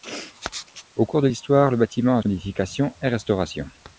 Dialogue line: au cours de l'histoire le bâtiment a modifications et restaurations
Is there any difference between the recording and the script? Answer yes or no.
no